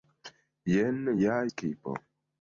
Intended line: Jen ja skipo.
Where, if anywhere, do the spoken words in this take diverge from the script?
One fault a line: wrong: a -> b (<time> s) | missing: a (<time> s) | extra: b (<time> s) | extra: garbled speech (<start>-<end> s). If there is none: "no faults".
no faults